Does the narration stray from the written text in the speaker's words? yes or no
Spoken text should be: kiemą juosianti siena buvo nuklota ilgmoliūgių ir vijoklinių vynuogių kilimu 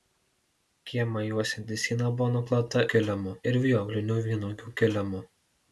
yes